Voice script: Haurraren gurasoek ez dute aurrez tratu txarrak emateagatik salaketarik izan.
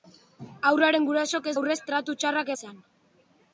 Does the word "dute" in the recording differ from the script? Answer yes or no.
yes